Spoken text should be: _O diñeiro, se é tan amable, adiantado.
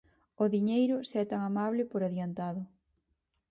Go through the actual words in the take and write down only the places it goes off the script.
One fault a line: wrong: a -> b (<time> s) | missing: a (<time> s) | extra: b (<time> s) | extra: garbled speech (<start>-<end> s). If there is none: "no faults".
extra: por (1.9 s)